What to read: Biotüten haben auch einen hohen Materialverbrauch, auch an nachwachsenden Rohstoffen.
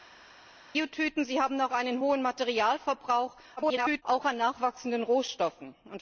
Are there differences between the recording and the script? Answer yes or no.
yes